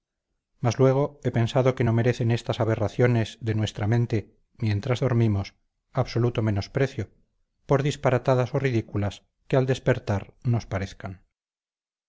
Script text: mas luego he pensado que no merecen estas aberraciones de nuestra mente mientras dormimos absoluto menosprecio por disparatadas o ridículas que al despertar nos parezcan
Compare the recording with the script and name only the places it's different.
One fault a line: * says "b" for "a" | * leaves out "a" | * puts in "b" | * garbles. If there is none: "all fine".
all fine